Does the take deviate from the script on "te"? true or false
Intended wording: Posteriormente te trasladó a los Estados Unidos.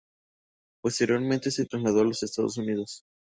true